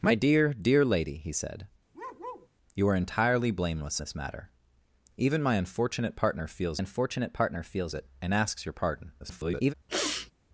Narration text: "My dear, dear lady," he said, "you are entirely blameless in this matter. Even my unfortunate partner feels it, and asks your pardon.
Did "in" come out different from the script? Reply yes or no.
yes